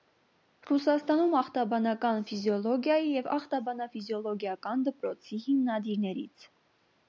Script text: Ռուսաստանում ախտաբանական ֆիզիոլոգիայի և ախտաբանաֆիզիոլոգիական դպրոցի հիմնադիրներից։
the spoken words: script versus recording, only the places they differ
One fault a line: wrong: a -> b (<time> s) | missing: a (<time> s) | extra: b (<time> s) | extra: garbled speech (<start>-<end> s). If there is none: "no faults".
no faults